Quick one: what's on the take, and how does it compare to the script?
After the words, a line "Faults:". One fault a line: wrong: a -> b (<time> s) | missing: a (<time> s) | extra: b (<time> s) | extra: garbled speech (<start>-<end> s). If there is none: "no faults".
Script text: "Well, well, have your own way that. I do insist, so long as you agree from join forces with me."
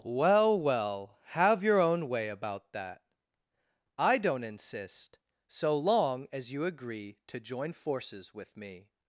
"Well, well, have your own way about that. I don't insist, so long as you agree to join forces with me."
Faults:
extra: about (2.3 s)
wrong: do -> don't (4.2 s)
wrong: from -> to (7.3 s)